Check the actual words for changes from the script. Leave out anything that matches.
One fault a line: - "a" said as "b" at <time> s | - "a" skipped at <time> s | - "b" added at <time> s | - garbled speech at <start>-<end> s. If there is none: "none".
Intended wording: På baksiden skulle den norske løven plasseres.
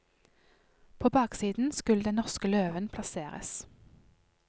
none